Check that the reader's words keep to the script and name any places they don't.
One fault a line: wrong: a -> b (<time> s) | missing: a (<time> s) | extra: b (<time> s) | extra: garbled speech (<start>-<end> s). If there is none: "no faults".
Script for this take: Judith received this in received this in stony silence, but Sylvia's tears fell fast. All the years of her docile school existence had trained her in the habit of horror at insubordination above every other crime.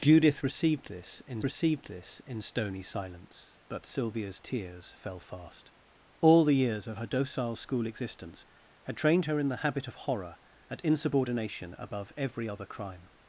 no faults